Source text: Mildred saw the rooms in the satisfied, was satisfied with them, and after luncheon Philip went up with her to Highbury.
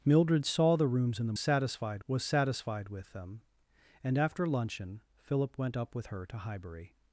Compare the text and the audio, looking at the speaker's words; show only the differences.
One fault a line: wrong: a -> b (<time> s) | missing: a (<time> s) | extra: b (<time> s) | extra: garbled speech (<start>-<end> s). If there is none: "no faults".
no faults